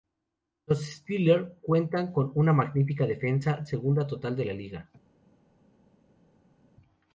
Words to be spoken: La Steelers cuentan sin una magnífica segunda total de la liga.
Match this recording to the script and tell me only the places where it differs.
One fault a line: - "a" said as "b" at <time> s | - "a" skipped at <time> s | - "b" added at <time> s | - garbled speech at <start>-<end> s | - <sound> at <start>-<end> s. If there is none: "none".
- "La" said as "Los" at 0.7 s
- "sin" said as "con" at 2.1 s
- "defensa" added at 3.1 s